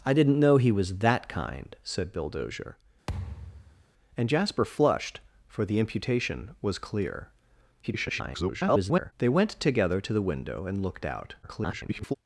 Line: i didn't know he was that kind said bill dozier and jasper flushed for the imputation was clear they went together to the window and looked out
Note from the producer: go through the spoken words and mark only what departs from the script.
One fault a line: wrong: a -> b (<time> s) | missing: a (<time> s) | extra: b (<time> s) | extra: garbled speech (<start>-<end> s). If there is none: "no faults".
extra: garbled speech (7.8-9.1 s)
extra: garbled speech (11.4-12.1 s)